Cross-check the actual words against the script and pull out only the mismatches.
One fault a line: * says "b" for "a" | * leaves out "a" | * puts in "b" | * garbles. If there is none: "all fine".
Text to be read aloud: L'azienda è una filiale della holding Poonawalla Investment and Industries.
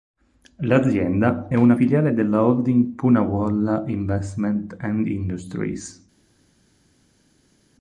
all fine